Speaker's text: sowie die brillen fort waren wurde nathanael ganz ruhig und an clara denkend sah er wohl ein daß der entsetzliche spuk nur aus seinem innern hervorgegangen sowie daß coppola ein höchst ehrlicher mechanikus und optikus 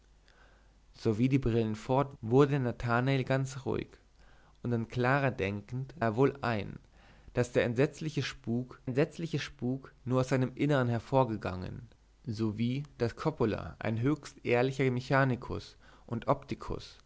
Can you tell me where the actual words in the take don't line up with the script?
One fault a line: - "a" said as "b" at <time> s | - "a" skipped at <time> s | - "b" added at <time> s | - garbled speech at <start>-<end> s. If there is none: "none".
- "waren" skipped at 2.2 s
- "sah" skipped at 5.9 s
- "entsetzliche spuk" added at 8.8 s